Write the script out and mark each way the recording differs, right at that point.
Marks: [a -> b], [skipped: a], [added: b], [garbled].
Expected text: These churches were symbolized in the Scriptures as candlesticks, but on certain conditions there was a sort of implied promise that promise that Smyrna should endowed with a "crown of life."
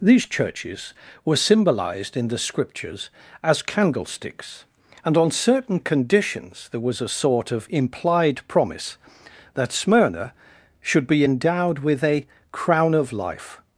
These churches were symbolized in the Scriptures as candlesticks, [but -> and] on certain conditions there was a sort of implied promise that [skipped: promise that] Smyrna should [added: be] endowed with a "crown of life."